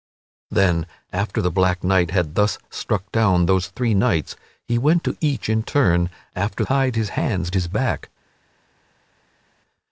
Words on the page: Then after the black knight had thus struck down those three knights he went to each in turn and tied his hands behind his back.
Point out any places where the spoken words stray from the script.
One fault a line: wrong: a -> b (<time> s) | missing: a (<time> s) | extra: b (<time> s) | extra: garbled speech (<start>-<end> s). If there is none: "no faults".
wrong: and -> after (6.4 s)
missing: behind (7.5 s)